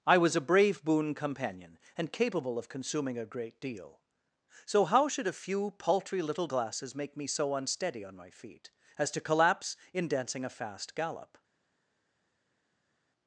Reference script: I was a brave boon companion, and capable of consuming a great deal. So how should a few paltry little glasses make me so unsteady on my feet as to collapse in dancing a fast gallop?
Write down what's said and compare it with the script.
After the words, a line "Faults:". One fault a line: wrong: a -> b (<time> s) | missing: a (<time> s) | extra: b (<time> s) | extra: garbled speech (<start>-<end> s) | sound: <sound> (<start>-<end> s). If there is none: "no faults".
I was a brave boon companion, and capable of consuming a great deal. So how should a few paltry little glasses make me so unsteady on my feet as to collapse in dancing a fast gallop?
Faults:
no faults